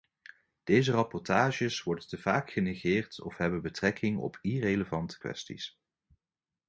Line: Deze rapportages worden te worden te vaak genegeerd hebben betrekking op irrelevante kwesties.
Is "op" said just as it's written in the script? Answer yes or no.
yes